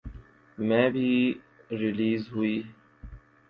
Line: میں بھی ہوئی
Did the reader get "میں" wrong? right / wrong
right